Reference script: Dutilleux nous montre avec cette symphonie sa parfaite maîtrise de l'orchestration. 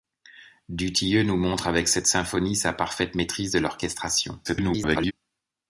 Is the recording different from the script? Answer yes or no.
yes